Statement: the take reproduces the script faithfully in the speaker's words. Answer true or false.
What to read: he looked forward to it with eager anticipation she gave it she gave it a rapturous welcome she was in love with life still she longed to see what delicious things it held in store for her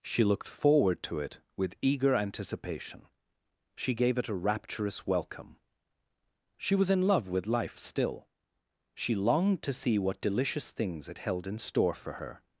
false